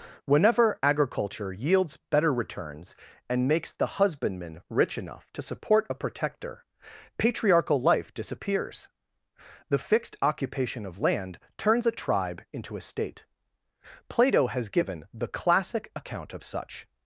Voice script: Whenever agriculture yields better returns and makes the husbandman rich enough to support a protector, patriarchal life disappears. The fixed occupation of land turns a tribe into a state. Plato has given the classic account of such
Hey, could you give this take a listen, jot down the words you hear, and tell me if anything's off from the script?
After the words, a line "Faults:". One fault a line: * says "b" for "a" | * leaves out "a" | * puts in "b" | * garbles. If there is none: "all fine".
Whenever agriculture yields better returns and makes the husbandman rich enough to support a protector, patriarchal life disappears. The fixed occupation of land turns a tribe into a state. Plato has given the classic account of such
Faults:
all fine